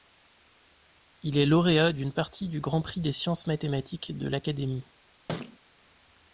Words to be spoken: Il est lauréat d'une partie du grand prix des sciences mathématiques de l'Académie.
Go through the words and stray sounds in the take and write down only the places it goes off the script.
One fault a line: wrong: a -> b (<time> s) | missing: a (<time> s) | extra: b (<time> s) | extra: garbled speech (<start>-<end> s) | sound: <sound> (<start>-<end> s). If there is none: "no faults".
sound: thud (5.3-5.6 s)